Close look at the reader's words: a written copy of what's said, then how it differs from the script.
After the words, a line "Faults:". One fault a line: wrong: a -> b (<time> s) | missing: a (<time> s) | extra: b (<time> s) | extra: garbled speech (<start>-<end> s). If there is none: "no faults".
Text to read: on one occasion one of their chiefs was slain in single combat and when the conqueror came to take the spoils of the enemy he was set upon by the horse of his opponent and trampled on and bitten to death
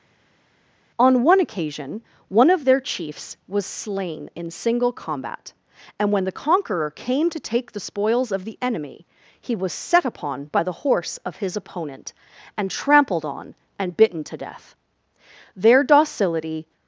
on one occasion one of their chiefs was slain in single combat and when the conqueror came to take the spoils of the enemy he was set upon by the horse of his opponent and trampled on and bitten to death their docility
Faults:
extra: their docility (15.6 s)